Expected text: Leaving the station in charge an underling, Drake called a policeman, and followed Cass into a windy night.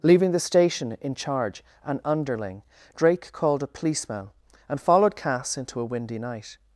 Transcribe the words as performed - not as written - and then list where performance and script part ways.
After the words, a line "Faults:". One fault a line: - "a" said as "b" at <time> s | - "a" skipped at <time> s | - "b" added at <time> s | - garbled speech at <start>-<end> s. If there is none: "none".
Leaving the station in charge an underling, Drake called a policeman, and followed Cass into a windy night.
Faults:
none